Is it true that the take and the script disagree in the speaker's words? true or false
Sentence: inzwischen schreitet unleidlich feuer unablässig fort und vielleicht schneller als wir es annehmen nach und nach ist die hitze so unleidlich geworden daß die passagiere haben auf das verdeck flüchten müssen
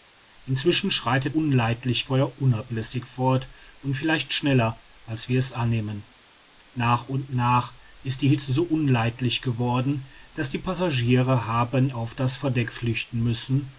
false